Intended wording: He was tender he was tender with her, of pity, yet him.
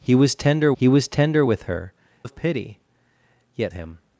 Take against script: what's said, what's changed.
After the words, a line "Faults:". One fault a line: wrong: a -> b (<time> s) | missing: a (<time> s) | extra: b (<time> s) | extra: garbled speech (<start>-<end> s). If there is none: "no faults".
He was tender he was tender with her, of pity, yet him.
Faults:
no faults